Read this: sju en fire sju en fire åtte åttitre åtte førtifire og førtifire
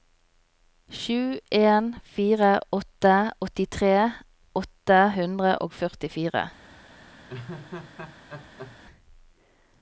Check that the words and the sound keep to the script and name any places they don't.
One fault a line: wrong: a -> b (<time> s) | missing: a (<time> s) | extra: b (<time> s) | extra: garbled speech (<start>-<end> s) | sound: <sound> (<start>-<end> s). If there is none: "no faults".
missing: sju en fire (2.5 s)
wrong: førtifire -> hundre (5.2 s)
sound: laugh (7.3-8.8 s)